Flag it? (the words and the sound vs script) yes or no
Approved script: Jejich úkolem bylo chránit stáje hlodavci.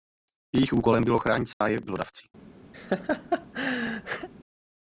yes